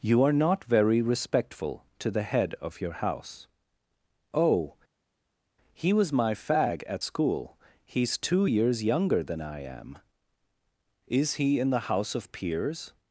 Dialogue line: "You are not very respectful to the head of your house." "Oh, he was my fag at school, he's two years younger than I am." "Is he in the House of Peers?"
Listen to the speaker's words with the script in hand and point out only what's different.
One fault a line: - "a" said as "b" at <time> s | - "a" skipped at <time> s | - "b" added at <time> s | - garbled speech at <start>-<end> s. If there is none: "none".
none